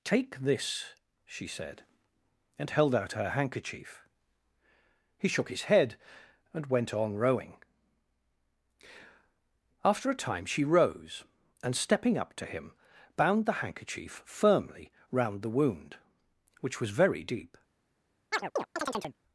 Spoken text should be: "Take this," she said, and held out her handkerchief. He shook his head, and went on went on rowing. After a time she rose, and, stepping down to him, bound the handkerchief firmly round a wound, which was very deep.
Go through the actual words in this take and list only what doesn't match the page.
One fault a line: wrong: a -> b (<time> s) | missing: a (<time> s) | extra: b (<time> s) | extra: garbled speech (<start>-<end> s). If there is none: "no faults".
missing: went on (7.2 s)
wrong: down -> up (12.2 s)
wrong: a -> the (15.4 s)